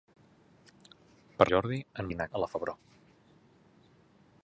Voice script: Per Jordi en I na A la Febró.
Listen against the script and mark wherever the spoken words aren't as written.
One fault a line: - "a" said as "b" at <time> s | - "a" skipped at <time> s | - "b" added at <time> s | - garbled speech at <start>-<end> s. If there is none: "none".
none